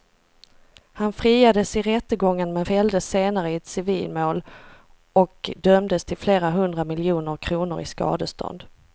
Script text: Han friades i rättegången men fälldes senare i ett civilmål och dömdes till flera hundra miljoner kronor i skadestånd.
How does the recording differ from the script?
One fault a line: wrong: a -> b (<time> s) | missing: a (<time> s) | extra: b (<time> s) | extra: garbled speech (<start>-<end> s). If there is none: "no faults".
no faults